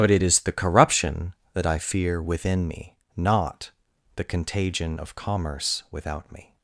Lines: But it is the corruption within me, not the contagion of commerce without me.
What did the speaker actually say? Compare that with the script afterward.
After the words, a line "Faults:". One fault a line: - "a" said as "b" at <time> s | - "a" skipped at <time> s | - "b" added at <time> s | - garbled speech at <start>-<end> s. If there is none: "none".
But it is the corruption that I fear within me, not the contagion of commerce without me.
Faults:
- "that I fear" added at 1.5 s